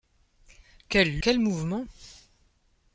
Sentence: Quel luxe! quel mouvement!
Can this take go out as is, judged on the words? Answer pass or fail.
fail